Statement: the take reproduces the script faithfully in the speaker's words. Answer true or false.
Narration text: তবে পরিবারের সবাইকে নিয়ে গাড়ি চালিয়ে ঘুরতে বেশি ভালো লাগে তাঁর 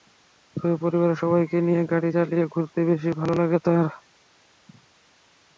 true